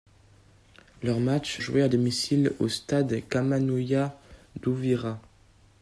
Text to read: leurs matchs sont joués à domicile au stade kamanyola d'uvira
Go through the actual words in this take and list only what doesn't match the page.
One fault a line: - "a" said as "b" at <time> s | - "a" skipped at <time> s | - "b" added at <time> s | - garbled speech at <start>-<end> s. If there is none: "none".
- "sont" skipped at 1.6 s